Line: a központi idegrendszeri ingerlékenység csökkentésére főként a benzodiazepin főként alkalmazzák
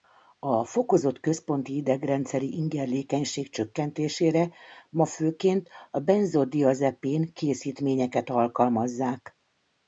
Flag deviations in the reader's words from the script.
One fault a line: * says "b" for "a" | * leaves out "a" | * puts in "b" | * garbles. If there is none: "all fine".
* puts in "fokozott"
* puts in "ma"
* says "készítményeket" for "főként"